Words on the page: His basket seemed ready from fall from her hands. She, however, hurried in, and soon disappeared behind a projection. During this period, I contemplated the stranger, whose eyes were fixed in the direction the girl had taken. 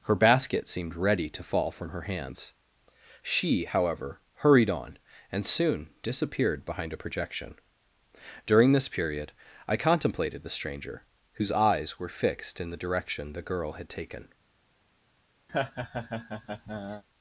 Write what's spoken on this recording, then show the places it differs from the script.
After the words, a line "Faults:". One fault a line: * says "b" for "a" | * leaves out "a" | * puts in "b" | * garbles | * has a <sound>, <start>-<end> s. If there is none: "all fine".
Her basket seemed ready to fall from her hands. She, however, hurried on, and soon disappeared behind a projection. During this period, I contemplated the stranger, whose eyes were fixed in the direction the girl had taken.
Faults:
* says "Her" for "His"
* says "to" for "from"
* says "on" for "in"
* has a laugh, 15.5-17.0 s